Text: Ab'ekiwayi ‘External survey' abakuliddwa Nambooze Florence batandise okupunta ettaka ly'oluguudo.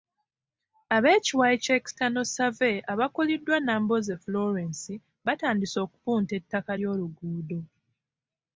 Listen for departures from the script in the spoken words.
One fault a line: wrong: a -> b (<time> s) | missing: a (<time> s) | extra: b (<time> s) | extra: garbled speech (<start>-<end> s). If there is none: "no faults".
extra: kya (1.6 s)